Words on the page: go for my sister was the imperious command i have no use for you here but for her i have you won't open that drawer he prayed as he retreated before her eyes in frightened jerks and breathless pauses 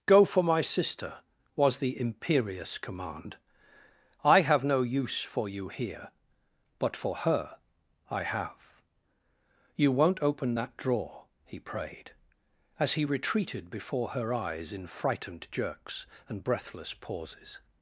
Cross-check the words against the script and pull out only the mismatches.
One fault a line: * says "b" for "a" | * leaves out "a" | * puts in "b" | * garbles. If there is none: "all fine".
all fine